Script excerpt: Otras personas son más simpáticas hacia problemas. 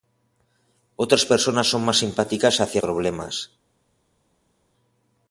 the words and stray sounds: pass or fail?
pass